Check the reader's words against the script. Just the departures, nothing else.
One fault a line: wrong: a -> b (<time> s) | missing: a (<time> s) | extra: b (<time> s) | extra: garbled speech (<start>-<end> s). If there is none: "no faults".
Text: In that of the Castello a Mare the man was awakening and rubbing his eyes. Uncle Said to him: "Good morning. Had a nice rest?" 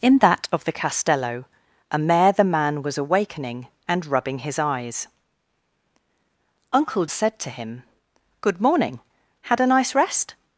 no faults